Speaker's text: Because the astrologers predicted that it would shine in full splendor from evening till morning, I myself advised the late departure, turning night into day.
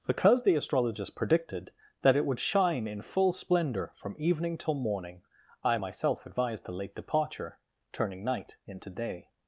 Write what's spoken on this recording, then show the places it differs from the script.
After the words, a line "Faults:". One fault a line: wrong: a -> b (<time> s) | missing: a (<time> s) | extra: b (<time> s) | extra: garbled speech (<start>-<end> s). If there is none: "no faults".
Because the astrologers predicted that it would shine in full splendor from evening till morning, I myself advised the late departure, turning night into day.
Faults:
no faults